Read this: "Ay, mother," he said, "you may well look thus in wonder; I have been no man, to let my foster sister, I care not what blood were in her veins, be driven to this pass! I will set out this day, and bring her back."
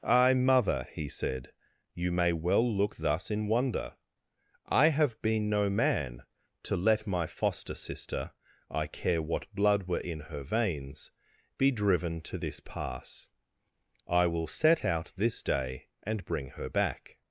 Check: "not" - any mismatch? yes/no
yes